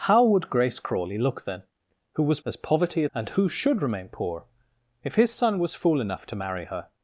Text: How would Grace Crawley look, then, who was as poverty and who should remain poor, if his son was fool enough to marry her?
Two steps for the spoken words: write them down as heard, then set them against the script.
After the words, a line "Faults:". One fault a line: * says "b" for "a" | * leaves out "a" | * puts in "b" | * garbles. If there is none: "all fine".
How would Grace Crawley look, then, who was as poverty and who should remain poor, if his son was fool enough to marry her?
Faults:
all fine